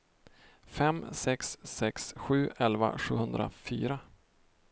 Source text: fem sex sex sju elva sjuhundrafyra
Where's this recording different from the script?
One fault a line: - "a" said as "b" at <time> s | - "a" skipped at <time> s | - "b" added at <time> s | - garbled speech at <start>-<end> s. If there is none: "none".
none